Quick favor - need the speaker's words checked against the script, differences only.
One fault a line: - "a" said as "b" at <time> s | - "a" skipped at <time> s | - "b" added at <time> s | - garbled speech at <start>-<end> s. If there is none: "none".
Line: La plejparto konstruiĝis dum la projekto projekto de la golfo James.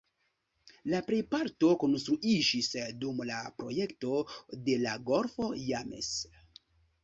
- "projekto" skipped at 4.2 s